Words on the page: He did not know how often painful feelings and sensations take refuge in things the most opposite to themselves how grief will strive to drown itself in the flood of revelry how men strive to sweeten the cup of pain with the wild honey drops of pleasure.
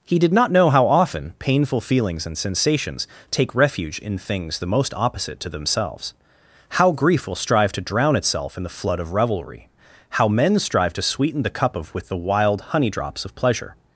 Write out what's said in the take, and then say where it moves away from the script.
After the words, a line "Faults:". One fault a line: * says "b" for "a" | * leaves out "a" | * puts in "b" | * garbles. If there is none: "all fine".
He did not know how often painful feelings and sensations take refuge in things the most opposite to themselves how grief will strive to drown itself in the flood of revelry how men strive to sweeten the cup of with the wild honey drops of pleasure.
Faults:
* leaves out "pain"